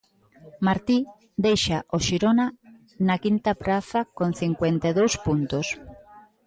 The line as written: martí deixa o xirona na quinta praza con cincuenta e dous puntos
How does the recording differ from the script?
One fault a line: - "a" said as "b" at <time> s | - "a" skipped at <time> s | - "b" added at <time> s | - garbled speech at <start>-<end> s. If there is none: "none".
none